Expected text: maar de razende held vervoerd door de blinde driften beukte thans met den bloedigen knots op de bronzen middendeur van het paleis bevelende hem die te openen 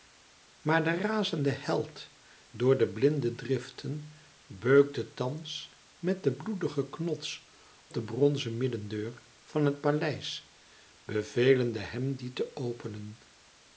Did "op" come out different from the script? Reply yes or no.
yes